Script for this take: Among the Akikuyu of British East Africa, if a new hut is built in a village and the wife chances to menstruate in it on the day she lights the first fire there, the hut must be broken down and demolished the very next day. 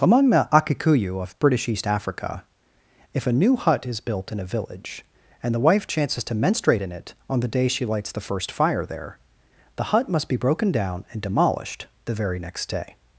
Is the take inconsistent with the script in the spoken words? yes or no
no